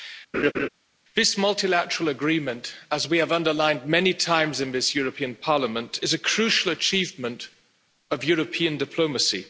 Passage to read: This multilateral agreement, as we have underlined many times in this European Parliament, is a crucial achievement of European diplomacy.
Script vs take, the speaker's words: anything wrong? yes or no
no